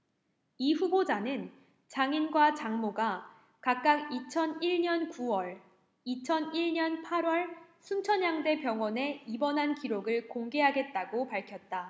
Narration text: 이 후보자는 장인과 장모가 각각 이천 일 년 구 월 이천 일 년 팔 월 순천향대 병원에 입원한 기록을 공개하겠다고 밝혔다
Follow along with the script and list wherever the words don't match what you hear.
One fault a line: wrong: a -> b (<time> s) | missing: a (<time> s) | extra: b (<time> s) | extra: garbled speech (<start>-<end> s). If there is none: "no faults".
no faults